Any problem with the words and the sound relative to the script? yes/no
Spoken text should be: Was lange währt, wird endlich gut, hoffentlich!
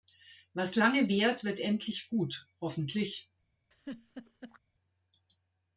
yes